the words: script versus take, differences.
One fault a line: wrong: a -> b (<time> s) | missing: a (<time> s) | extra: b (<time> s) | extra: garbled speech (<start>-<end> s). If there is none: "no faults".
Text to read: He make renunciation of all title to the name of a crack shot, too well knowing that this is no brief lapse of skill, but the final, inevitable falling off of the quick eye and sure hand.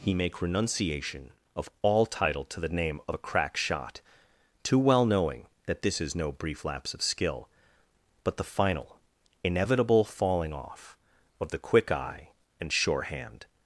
no faults